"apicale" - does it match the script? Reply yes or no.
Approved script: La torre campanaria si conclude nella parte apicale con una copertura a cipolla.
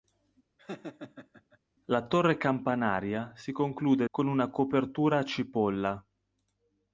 no